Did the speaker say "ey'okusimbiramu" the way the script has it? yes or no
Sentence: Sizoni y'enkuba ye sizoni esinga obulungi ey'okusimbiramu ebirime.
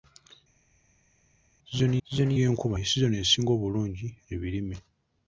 no